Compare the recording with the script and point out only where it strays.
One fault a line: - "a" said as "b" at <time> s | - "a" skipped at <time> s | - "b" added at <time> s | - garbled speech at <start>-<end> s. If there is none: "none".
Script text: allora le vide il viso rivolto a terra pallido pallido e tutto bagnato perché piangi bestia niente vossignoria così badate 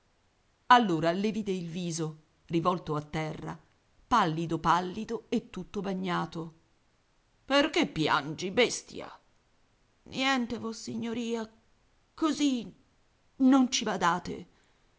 - "non ci" added at 13.4 s